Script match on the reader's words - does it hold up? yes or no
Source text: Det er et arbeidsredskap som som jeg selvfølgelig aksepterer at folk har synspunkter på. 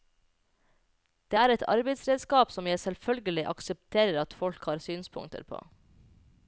no